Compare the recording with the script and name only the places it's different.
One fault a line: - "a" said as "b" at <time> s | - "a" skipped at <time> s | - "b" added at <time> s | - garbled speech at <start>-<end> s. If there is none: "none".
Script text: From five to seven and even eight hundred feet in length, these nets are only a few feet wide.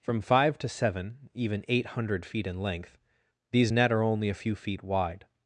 - "and" skipped at 1.3 s
- "nets" said as "net" at 3.7 s